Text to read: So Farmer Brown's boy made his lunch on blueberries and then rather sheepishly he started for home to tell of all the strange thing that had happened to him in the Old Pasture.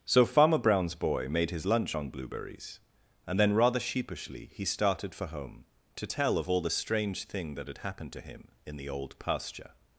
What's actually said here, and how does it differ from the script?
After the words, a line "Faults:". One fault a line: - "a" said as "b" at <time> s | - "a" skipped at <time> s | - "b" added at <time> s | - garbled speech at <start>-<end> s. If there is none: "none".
So Farmer Brown's boy made his lunch on blueberries and then rather sheepishly he started for home to tell of all the strange thing that had happened to him in the Old Pasture.
Faults:
none